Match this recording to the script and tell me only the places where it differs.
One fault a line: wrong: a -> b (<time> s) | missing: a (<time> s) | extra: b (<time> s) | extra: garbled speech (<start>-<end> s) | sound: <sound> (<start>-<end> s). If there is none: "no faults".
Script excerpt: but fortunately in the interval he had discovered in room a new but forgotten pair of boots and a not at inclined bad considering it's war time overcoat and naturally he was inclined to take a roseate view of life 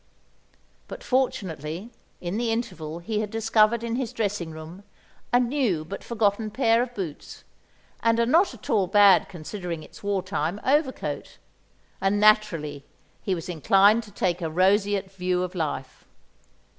extra: his dressing (4.0 s)
wrong: inclined -> all (8.7 s)